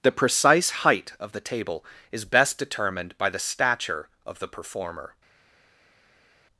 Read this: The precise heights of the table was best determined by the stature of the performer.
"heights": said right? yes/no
no